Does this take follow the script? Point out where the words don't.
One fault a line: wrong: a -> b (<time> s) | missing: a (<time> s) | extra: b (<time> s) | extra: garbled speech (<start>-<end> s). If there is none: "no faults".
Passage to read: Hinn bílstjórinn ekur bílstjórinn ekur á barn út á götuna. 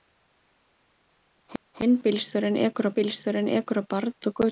no faults